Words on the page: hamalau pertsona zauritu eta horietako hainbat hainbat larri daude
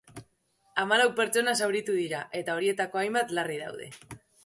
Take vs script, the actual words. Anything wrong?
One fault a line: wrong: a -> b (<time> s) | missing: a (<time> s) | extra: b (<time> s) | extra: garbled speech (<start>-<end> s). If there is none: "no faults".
extra: dira (2.0 s)
missing: hainbat (3.4 s)